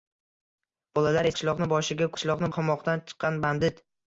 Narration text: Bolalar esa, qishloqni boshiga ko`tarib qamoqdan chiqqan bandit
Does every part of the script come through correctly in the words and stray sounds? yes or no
no